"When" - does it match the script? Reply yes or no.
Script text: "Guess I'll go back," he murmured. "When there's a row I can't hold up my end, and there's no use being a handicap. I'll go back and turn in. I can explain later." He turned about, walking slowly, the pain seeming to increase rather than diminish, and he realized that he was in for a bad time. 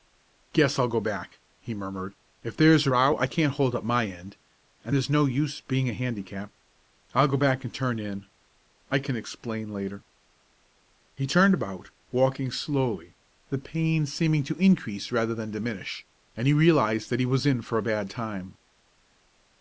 no